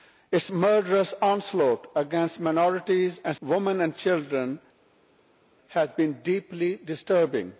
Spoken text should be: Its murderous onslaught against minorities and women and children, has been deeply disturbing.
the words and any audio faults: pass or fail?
pass